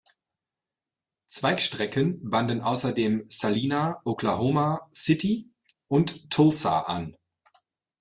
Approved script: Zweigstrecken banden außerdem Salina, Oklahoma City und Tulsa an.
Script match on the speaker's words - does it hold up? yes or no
yes